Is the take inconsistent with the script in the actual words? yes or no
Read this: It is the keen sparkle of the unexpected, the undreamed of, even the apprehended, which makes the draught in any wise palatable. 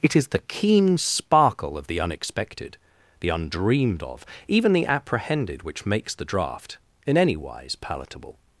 no